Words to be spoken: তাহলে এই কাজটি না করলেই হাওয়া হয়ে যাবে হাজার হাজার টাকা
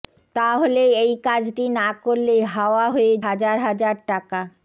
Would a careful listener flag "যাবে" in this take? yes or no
yes